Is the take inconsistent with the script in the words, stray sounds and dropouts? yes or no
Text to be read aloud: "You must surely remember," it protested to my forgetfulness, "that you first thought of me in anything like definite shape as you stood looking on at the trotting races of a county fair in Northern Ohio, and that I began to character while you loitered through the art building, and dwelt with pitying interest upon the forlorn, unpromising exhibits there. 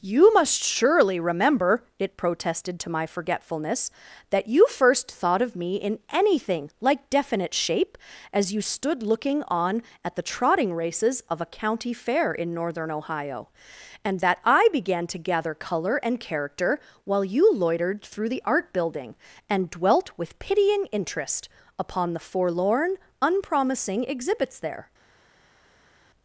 yes